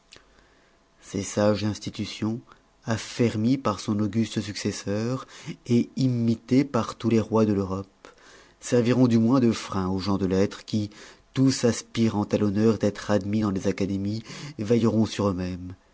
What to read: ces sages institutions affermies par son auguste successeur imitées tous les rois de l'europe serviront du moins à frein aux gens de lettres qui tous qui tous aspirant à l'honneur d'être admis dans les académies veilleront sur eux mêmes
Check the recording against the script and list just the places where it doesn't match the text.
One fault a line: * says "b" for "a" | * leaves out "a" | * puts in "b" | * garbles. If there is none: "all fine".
* puts in "par"
* says "de" for "à"
* leaves out "qui tous"